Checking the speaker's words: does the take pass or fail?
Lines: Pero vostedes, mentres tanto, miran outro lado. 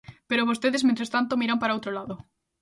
fail